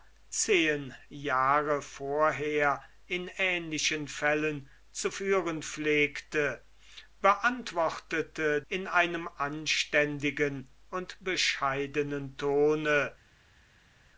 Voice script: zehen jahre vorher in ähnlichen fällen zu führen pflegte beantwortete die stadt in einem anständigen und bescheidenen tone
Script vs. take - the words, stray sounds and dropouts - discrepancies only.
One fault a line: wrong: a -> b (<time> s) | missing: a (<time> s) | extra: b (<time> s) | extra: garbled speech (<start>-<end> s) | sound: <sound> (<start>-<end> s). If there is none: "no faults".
missing: die stadt (8.6 s)